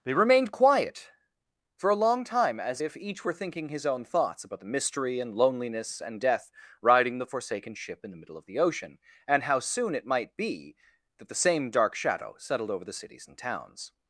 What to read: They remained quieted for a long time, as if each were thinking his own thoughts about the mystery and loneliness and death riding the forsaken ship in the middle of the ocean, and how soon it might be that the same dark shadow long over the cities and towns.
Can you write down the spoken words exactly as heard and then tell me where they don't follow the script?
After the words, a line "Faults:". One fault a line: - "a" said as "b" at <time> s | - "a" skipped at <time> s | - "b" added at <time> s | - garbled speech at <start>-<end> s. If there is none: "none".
They remained quiet for a long time, as if each were thinking his own thoughts about the mystery and loneliness and death riding the forsaken ship in the middle of the ocean, and how soon it might be that the same dark shadow settled over the cities and towns.
Faults:
- "quieted" said as "quiet" at 0.5 s
- "long" said as "settled" at 12.4 s